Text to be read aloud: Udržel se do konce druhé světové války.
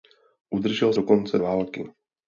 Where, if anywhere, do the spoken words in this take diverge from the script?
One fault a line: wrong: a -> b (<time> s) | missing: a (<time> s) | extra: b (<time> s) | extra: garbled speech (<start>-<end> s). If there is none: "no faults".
missing: se (0.9 s)
missing: druhé světové (1.4 s)